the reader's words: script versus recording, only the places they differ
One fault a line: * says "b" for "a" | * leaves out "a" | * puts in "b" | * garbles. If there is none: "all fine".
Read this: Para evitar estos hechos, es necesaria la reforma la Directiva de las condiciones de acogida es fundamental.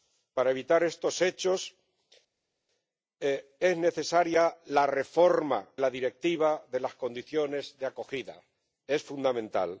all fine